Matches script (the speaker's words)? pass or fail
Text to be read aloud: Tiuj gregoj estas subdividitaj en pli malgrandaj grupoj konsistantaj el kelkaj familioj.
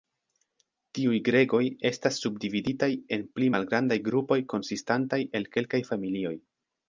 pass